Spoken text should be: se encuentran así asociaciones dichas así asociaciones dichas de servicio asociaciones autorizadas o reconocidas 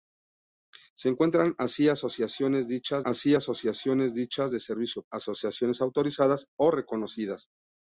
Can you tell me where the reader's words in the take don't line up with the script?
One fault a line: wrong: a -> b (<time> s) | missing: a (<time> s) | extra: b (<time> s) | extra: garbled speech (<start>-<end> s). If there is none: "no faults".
no faults